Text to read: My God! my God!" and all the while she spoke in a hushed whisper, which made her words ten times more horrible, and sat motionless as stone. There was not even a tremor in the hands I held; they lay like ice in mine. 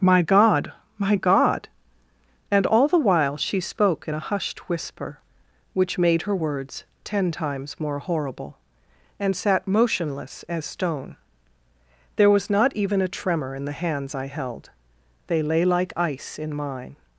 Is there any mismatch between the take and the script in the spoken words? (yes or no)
no